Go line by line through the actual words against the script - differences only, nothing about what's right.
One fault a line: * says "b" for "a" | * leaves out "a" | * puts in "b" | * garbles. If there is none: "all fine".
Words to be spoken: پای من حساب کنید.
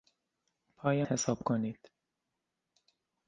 * leaves out "من"